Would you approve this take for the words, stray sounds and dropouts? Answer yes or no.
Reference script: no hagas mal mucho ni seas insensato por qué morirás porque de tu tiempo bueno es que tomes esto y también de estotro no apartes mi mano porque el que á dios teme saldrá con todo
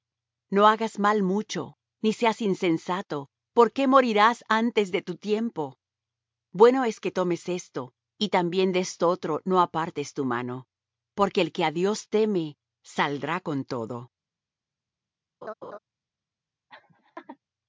no